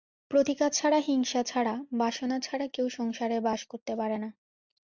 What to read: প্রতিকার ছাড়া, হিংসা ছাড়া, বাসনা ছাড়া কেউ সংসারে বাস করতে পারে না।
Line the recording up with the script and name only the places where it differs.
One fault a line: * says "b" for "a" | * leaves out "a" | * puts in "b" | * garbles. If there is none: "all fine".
all fine